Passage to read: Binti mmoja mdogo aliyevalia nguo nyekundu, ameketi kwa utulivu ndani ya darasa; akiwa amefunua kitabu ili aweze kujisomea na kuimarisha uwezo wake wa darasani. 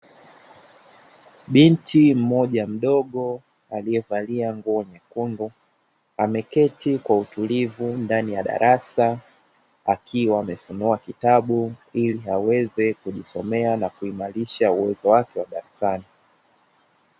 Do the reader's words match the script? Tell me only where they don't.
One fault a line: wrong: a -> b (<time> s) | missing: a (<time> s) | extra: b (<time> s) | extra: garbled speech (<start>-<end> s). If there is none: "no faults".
no faults